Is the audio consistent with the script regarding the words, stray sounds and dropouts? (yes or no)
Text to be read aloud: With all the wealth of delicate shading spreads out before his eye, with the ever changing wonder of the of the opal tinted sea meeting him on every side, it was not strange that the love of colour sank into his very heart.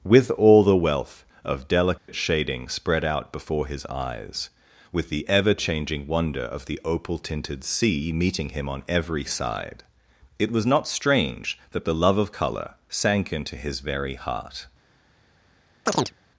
no